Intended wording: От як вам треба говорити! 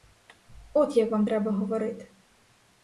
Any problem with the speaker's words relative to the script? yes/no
no